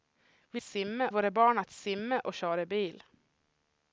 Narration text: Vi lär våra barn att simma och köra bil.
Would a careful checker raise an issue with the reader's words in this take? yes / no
yes